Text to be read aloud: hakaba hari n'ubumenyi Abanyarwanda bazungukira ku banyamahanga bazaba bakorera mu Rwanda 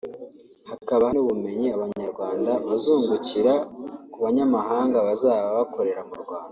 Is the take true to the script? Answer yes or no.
no